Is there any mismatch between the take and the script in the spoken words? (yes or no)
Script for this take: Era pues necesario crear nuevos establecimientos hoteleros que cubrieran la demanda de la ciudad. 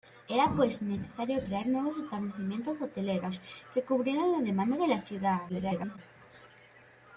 yes